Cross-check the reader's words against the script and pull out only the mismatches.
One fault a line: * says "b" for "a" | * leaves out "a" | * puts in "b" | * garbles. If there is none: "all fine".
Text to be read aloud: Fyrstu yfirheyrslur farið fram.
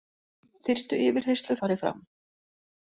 all fine